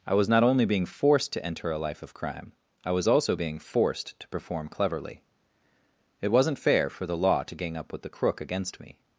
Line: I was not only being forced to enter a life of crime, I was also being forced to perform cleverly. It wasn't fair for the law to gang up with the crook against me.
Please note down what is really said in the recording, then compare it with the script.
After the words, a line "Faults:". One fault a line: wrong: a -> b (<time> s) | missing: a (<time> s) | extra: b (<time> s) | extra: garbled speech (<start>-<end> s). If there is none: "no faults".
I was not only being forced to enter a life of crime, I was also being forced to perform cleverly. It wasn't fair for the law to gang up with the crook against me.
Faults:
no faults